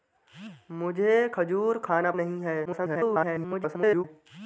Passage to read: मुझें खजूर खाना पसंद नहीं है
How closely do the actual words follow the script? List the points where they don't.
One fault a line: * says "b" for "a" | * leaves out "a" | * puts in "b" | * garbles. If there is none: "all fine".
* leaves out "पसंद"
* garbles